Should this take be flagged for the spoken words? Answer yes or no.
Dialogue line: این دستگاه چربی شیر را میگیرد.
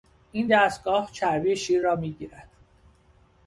no